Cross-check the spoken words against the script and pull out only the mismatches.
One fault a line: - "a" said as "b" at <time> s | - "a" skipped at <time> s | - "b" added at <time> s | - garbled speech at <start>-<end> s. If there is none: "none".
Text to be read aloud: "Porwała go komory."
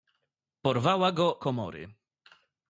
none